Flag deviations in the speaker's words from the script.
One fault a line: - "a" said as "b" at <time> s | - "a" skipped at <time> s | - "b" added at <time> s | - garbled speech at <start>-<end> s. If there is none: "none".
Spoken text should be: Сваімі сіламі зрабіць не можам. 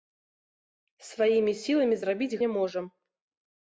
none